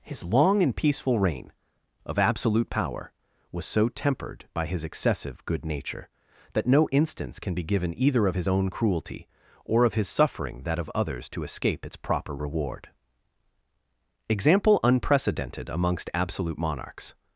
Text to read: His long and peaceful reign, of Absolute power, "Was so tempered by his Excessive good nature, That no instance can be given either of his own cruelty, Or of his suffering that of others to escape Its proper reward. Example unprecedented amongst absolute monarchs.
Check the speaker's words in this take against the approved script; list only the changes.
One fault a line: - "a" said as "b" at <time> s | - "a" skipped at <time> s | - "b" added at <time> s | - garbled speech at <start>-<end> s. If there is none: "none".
none